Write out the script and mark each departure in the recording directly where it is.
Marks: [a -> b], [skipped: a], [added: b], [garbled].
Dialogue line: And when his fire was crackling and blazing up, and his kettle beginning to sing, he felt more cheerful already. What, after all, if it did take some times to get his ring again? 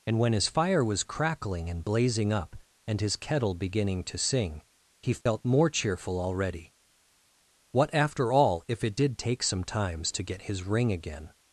And when his fire was crackling and blazing up, and his kettle beginning to sing, he felt more cheerful already. What, after all, if it did take some times to get his ring again?